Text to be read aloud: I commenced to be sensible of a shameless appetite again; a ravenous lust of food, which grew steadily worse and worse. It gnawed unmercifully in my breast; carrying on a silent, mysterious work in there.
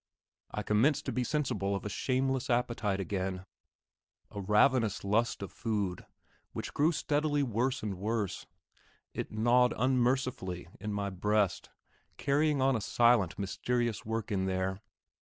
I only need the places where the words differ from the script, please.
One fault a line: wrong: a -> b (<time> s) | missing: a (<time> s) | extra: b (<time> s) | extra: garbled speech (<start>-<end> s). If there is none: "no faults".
no faults